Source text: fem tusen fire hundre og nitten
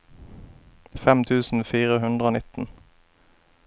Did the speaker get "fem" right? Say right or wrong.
right